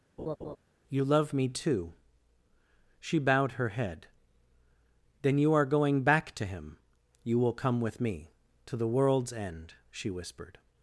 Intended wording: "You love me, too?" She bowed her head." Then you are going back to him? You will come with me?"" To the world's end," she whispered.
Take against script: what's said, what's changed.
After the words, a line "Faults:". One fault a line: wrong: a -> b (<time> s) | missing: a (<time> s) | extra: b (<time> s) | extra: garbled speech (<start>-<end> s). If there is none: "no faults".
"You love me, too?" She bowed her head." Then you are going back to him? You will come with me?"" To the world's end," she whispered.
Faults:
no faults